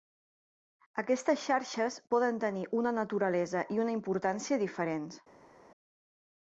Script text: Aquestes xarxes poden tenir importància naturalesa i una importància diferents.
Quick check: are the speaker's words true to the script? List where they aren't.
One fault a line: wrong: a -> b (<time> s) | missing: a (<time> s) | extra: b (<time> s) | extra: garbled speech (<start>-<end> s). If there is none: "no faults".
wrong: importància -> una (2.8 s)